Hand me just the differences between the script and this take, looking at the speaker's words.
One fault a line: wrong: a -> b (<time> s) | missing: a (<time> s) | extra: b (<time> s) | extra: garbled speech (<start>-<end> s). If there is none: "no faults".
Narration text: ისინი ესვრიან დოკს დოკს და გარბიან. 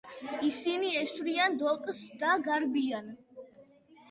missing: დოკს (2.0 s)